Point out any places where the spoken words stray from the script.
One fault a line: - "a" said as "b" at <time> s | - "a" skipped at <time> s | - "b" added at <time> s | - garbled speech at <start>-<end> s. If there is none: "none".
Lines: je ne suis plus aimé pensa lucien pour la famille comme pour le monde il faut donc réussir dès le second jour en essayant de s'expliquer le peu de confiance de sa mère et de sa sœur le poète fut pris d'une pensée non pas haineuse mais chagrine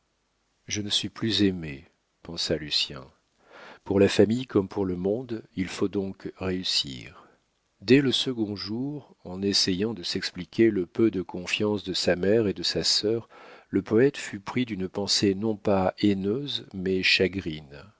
none